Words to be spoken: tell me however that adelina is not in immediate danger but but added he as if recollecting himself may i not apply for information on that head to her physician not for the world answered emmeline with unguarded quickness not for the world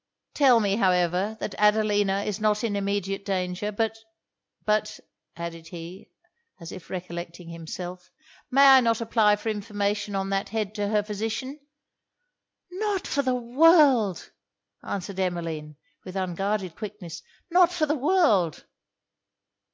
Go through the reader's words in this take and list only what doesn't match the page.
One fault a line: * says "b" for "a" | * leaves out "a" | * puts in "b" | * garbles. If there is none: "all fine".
all fine